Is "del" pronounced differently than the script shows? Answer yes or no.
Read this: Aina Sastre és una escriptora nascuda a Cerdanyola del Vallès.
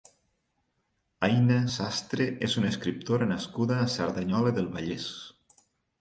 no